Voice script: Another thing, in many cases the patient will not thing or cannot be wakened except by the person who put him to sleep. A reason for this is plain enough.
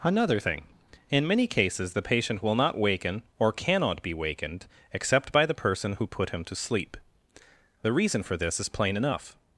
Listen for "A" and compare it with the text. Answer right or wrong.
wrong